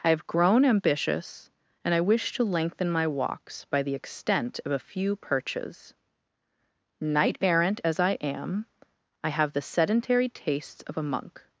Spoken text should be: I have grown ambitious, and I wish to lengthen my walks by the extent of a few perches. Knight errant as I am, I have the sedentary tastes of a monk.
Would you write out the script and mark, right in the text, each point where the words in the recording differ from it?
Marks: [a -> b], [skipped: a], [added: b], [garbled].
I have grown ambitious, and I wish to lengthen my walks by the extent of a few perches. Knight errant as I am, I have the sedentary tastes of a monk.